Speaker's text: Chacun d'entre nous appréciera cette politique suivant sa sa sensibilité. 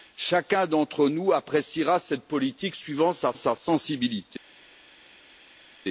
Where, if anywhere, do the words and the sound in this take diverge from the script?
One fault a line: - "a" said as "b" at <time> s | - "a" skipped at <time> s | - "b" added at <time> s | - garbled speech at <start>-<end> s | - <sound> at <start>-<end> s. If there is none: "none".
none